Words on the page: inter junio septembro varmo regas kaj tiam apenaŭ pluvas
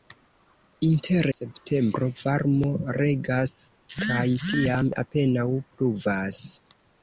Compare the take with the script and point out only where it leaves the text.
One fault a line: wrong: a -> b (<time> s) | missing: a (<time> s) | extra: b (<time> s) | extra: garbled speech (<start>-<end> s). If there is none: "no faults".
missing: junio (1.3 s)